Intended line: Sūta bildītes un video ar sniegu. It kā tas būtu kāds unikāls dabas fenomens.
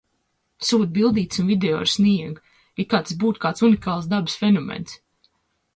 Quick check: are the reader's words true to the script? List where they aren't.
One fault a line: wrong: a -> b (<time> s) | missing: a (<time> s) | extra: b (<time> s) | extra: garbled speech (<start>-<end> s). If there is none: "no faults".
no faults